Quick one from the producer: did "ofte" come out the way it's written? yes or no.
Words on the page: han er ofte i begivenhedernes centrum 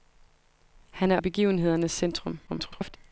no